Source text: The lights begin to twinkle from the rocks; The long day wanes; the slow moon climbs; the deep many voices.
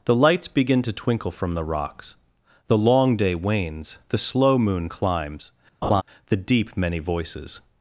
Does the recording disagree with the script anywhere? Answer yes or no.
no